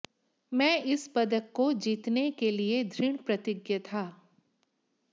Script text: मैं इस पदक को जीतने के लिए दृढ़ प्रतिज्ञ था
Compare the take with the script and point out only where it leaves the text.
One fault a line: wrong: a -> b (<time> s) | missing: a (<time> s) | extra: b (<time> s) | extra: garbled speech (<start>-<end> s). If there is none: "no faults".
no faults